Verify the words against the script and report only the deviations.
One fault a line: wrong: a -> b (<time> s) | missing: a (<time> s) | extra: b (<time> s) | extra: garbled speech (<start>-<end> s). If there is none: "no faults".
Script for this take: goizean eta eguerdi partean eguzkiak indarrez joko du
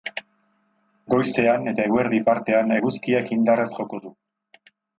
no faults